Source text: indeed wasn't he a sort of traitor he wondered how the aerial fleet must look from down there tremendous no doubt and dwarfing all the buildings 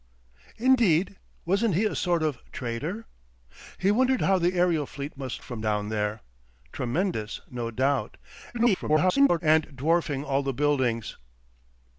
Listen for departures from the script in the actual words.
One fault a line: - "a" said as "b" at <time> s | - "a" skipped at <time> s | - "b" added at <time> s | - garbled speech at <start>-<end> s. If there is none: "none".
- "look" skipped at 5.4 s
- garbled speech at 8.5-9.4 s